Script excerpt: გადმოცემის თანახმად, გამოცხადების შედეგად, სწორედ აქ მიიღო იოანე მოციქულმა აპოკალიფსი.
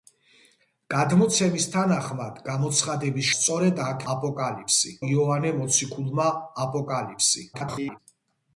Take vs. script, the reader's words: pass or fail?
fail